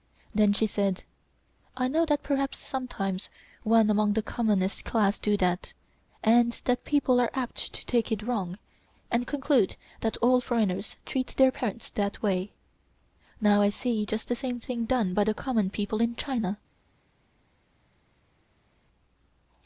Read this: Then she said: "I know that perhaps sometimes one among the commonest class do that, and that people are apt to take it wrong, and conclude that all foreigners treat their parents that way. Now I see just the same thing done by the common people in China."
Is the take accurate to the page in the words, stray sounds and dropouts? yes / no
yes